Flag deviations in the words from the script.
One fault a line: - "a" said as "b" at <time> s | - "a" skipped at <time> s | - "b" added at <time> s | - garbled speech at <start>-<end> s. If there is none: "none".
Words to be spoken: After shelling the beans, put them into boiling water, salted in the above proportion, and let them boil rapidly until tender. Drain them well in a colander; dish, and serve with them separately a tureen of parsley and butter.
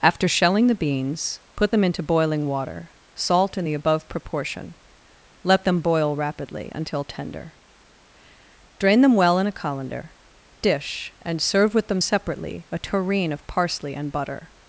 - "salted" said as "salt" at 3.2 s
- "and" skipped at 4.8 s